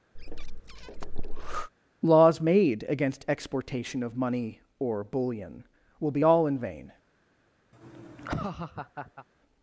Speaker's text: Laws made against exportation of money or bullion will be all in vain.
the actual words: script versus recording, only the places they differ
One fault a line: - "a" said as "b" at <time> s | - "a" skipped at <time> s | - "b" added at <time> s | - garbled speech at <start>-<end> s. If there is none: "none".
none